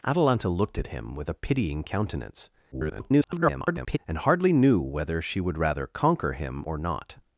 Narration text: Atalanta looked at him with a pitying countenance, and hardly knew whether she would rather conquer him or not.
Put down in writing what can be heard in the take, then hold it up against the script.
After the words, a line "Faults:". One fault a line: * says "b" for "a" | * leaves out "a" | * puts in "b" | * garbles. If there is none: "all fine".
Atalanta looked at him with a pitying countenance, [garbled] and hardly knew whether she would rather conquer him or not.
Faults:
* garbles